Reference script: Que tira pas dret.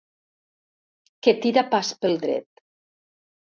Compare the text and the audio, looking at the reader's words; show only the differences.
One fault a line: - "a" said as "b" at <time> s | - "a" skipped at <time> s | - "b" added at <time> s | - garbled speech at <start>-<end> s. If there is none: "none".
- "pel" added at 2.0 s